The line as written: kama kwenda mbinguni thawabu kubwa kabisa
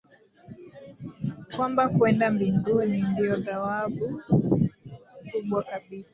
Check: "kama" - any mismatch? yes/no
yes